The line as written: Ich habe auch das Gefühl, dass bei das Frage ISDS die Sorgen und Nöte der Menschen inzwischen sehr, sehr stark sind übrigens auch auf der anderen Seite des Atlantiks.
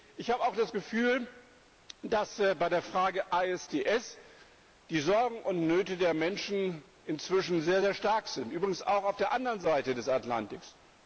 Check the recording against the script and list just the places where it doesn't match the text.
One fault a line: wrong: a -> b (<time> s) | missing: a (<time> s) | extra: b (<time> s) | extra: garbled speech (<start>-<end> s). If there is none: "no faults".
wrong: das -> der (2.7 s)